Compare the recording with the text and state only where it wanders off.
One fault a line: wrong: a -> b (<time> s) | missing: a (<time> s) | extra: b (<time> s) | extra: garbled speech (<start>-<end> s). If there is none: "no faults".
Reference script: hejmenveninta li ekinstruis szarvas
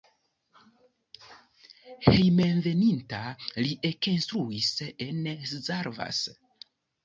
extra: en (5.1 s)